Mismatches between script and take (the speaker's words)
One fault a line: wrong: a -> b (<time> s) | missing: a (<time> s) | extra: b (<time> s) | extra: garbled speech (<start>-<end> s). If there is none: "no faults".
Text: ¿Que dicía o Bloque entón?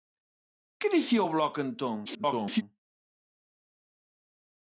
extra: garbled speech (2.1-2.6 s)